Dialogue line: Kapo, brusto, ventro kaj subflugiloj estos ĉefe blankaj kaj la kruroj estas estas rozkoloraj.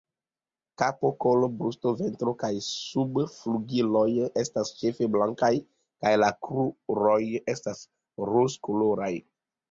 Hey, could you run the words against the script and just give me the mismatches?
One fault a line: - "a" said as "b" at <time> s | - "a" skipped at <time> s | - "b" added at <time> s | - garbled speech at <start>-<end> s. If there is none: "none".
- "kolo" added at 1.2 s
- "estos" said as "estas" at 4.4 s
- "estas" skipped at 7.8 s